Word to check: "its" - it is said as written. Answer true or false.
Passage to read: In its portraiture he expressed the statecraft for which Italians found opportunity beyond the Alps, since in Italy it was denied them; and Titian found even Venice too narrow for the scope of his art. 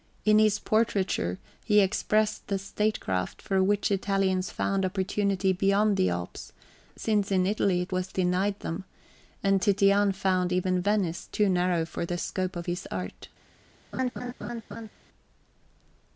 false